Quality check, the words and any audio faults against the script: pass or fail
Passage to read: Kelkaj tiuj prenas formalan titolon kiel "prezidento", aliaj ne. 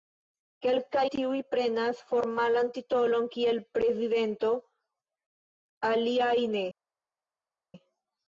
pass